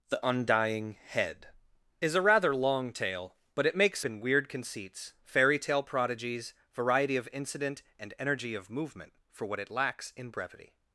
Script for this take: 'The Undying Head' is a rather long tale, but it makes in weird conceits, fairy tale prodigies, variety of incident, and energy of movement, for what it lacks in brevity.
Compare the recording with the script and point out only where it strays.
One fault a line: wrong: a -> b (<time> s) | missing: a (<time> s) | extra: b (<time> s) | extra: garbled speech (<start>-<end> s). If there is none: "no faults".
no faults